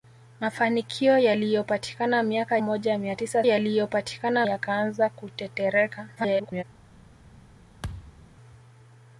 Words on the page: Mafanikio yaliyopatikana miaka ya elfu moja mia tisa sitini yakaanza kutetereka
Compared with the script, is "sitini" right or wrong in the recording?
wrong